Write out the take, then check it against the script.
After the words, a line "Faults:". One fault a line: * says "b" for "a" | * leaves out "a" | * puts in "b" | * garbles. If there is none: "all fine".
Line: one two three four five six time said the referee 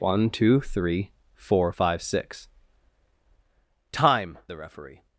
one two three four five six time the referee
Faults:
* leaves out "said"